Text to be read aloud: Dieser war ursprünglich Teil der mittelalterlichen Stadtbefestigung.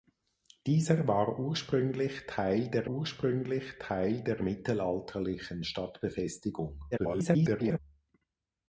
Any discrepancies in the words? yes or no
yes